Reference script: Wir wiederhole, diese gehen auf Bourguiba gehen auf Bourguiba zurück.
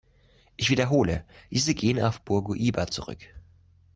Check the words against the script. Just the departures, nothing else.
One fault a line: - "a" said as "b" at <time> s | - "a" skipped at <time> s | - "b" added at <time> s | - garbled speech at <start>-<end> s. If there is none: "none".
- "Wir" said as "Ich" at 0.6 s
- "gehen auf Bourguiba" skipped at 2.9 s